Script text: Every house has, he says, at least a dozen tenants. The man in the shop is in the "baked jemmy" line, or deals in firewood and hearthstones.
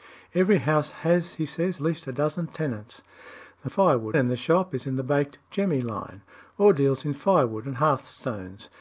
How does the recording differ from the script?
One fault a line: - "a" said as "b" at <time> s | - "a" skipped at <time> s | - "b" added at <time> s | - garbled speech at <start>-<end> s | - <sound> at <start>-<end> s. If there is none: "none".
- "at" skipped at 1.8 s
- "man" said as "firewood" at 3.7 s